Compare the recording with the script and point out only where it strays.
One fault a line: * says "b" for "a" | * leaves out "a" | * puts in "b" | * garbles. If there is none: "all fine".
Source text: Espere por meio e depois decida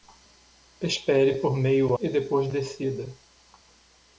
all fine